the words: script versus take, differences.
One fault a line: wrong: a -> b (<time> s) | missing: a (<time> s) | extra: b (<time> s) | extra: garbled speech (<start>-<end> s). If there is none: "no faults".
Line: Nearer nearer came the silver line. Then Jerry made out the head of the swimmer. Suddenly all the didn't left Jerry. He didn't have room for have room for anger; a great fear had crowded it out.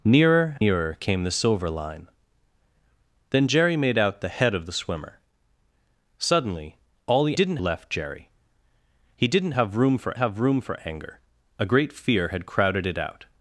no faults